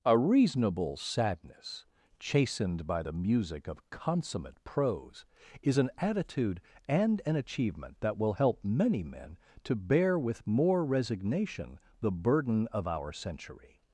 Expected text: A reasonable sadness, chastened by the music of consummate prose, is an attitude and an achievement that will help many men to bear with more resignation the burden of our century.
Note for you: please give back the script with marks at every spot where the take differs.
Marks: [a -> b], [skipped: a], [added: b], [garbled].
A reasonable sadness, chastened by the music of consummate prose, is an attitude and an achievement that will help many men to bear with more resignation the burden of our century.